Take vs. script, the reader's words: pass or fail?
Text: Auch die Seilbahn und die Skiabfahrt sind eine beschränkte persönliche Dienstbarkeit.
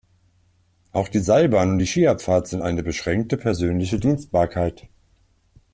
pass